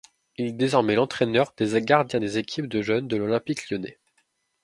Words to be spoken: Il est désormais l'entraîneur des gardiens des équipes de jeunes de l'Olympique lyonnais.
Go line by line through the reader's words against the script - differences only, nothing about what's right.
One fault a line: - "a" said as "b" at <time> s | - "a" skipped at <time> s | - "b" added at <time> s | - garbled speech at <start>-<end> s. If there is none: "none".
none